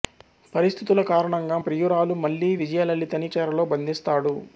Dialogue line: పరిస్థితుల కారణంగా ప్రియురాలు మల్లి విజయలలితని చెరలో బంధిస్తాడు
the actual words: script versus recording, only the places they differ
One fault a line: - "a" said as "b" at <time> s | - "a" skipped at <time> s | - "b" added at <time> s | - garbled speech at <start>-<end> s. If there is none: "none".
none